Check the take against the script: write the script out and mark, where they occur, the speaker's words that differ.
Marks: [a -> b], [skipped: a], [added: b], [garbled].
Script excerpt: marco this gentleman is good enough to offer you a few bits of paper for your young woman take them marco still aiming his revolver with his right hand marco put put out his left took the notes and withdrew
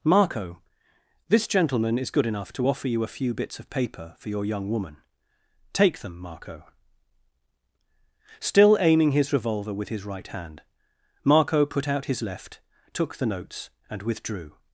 marco this gentleman is good enough to offer you a few bits of paper for your young woman take them marco still aiming his revolver with his right hand marco put [skipped: put] out his left took the notes and withdrew